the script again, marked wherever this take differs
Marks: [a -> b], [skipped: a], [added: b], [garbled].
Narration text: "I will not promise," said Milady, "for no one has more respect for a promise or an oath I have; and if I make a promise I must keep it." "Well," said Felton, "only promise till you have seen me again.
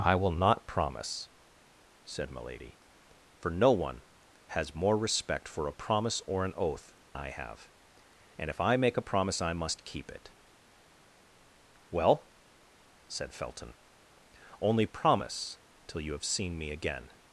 "I will not promise," said Milady, "for no one has more respect for a promise or an oath I have; and if I make a promise I must keep it." "Well," said Felton, "only promise till you have seen me again.